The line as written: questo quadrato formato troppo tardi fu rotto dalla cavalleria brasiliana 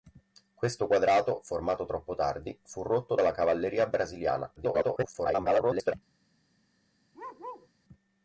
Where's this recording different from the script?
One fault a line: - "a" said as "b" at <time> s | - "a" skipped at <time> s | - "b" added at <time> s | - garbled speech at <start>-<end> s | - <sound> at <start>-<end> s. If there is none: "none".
- garbled speech at 4.6-5.9 s
- bark at 7.1-7.7 s